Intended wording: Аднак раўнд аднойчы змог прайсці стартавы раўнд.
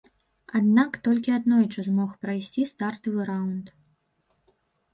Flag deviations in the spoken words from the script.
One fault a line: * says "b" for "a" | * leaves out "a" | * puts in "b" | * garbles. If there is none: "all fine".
* says "толькі" for "раўнд"